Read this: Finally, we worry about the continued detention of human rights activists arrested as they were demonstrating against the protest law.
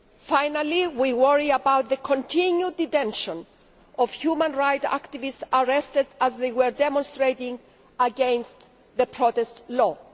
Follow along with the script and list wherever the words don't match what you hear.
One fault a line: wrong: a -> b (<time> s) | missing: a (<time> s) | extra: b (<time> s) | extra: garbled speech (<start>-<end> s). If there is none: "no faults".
no faults